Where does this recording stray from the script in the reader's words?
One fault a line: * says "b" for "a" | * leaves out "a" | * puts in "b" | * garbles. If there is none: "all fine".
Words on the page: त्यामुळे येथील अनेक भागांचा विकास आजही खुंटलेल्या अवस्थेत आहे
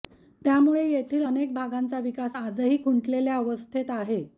all fine